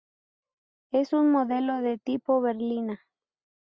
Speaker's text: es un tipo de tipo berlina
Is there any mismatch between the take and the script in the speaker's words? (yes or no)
yes